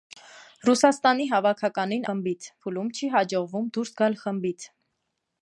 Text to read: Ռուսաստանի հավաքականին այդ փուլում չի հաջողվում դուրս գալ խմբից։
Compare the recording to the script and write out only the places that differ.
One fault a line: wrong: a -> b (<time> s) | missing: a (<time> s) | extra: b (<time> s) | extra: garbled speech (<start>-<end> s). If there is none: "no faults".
wrong: այդ -> խմբից (2.1 s)